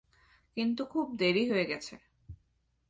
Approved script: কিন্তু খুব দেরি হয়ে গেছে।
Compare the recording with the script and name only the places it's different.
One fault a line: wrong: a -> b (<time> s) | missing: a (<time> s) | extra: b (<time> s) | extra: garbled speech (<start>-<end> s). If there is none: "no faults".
no faults